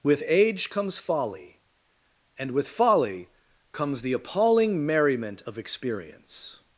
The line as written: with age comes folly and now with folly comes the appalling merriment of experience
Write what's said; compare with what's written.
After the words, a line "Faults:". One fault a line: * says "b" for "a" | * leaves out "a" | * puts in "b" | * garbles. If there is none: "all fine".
with age comes folly and with folly comes the appalling merriment of experience
Faults:
* leaves out "now"